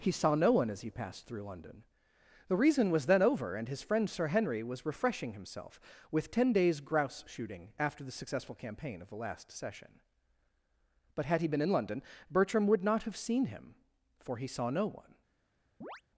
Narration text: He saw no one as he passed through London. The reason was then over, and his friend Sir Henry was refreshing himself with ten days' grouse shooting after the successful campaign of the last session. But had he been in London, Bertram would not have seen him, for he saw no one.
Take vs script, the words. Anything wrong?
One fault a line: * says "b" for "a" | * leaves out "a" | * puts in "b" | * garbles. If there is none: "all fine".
all fine